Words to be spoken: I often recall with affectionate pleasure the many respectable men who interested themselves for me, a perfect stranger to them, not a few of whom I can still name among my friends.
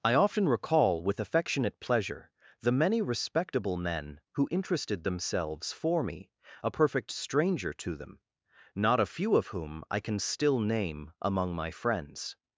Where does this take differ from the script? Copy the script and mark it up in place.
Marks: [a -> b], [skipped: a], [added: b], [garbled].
I often recall with affectionate pleasure the many respectable men who interested themselves for me, a perfect stranger to them, not a few of whom I can still name among my friends.